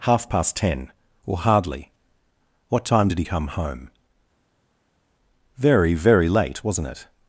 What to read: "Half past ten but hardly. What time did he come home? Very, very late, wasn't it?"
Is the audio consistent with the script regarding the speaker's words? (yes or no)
no